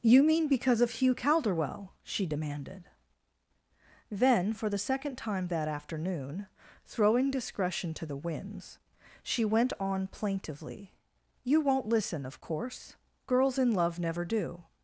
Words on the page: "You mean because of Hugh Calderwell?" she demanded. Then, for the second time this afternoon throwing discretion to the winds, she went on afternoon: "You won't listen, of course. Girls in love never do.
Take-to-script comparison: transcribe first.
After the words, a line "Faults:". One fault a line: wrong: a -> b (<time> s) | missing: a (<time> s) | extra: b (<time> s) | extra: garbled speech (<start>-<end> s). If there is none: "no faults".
"You mean because of Hugh Calderwell?" she demanded. Then, for the second time that afternoon throwing discretion to the winds, she went on plaintively: "You won't listen, of course. Girls in love never do.
Faults:
wrong: this -> that (5.5 s)
wrong: afternoon -> plaintively (10.1 s)